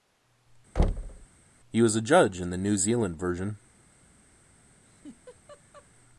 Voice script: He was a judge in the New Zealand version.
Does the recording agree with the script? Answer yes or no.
yes